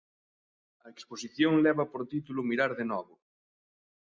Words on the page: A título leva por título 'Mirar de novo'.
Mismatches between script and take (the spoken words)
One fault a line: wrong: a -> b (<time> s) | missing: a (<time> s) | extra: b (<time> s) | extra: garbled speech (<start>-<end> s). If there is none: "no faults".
wrong: título -> exposición (0.9 s)